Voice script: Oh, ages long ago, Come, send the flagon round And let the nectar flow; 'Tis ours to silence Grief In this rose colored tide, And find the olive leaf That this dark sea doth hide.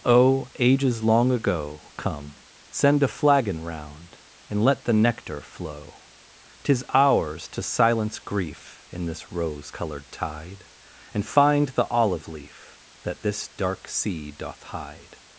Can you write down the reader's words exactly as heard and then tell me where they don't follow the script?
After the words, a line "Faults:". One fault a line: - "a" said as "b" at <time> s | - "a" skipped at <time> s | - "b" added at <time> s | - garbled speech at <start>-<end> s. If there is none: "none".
Oh, ages long ago, Come, send a flagon round And let the nectar flow; 'Tis ours to silence Grief In this rose colored tide, And find the olive leaf That this dark sea doth hide.
Faults:
- "the" said as "a" at 3.0 s